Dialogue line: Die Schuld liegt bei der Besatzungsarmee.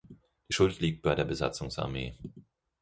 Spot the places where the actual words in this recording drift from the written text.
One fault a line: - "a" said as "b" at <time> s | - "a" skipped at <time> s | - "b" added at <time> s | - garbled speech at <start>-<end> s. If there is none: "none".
none